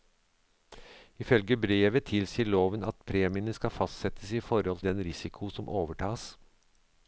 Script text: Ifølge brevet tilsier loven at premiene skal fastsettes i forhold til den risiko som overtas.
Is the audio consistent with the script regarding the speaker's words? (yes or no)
no